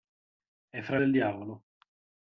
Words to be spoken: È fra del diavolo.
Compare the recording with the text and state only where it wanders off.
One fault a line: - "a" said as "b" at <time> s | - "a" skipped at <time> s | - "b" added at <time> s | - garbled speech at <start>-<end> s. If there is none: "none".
none